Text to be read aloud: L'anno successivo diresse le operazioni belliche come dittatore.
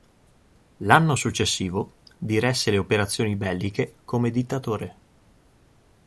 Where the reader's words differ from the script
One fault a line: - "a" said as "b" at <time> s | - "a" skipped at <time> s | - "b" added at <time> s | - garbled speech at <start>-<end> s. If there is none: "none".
none